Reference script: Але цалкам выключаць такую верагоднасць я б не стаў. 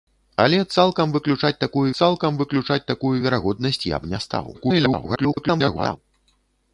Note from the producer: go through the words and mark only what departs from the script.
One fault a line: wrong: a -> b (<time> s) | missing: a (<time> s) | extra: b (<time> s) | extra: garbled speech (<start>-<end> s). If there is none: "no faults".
extra: цалкам выключаць такую (2.0 s)
extra: garbled speech (4.5-6.0 s)